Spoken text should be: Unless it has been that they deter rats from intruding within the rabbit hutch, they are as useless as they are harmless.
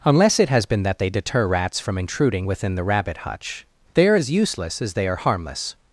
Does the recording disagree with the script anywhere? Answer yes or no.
no